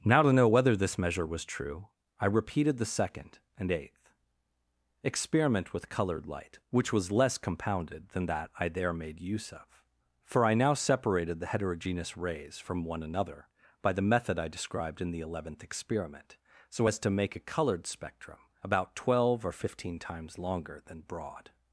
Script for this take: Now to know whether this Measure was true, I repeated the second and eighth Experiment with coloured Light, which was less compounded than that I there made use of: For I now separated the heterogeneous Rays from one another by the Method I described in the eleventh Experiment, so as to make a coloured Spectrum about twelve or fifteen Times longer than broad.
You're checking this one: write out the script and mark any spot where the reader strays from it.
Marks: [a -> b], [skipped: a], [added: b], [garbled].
Now to know whether this Measure was true, I repeated the second and eighth Experiment with coloured Light, which was less compounded than that I there made use of: For I now separated the heterogeneous Rays from one another by the Method I described in the eleventh Experiment, so as to make a coloured Spectrum about twelve or fifteen Times longer than broad.